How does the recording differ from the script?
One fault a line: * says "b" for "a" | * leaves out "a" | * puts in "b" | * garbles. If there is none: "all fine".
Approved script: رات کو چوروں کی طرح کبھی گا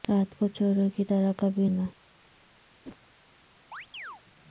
all fine